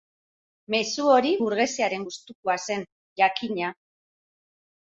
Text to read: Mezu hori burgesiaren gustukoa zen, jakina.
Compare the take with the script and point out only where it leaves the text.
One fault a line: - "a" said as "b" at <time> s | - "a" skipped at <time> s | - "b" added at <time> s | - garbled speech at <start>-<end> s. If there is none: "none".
none